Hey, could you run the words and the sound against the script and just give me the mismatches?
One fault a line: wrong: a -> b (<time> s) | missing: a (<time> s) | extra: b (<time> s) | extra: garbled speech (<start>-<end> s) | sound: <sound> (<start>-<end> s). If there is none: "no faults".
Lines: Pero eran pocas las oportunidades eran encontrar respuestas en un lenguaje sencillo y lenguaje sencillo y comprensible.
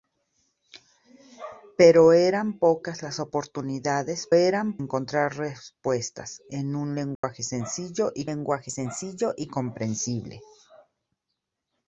sound: dropout (7.2-7.2 s)